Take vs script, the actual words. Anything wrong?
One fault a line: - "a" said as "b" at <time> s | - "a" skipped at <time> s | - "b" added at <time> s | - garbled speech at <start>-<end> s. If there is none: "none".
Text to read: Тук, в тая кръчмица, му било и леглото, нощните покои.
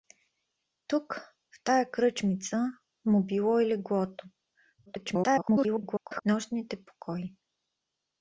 - garbled speech at 4.9-6.2 s